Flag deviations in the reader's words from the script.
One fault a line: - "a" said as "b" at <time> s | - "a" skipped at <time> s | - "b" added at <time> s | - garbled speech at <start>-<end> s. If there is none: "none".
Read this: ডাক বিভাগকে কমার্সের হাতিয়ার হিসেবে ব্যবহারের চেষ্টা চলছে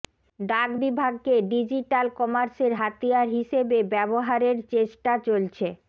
- "ডিজিটাল" added at 1.5 s